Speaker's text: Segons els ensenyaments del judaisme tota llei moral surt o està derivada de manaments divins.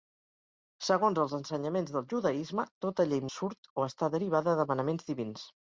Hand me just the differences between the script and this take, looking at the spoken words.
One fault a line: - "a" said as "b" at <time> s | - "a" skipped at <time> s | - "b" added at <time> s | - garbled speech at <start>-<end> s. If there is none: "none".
- "moral" skipped at 3.2 s